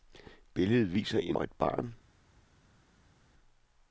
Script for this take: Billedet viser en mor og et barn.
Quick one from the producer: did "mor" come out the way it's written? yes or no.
no